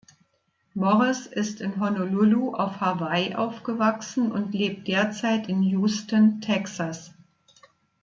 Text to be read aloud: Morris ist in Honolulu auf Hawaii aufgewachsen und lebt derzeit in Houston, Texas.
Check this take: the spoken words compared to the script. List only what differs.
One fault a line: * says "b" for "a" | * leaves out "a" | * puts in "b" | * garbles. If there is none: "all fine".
all fine